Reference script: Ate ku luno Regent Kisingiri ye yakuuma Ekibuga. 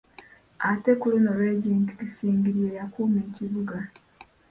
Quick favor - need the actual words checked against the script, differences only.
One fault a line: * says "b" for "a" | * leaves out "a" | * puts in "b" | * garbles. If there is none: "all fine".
all fine